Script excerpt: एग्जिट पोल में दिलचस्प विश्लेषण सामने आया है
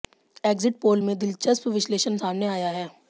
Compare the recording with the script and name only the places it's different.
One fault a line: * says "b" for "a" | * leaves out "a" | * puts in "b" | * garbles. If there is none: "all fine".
all fine